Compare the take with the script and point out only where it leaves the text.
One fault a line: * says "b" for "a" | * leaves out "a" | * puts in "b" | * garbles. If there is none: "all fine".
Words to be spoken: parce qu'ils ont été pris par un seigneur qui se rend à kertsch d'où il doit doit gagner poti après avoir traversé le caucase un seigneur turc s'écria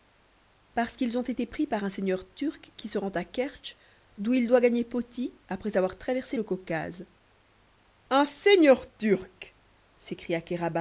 * puts in "turc"
* leaves out "doit"